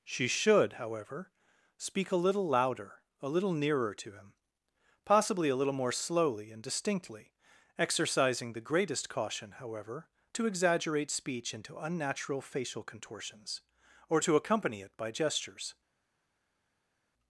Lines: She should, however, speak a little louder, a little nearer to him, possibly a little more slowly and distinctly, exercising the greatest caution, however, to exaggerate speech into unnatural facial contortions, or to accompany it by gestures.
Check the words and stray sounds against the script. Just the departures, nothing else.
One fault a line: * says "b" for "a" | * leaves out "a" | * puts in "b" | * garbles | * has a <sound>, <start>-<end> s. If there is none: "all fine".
all fine